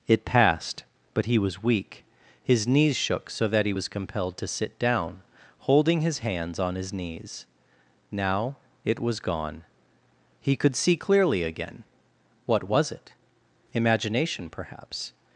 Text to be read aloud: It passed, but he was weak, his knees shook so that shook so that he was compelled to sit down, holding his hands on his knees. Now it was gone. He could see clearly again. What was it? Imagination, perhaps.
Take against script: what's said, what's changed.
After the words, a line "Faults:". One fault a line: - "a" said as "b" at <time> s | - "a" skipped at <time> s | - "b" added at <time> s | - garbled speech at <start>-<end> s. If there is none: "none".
It passed, but he was weak, his knees shook so that he was compelled to sit down, holding his hands on his knees. Now it was gone. He could see clearly again. What was it? Imagination, perhaps.
Faults:
- "shook so that" skipped at 3.6 s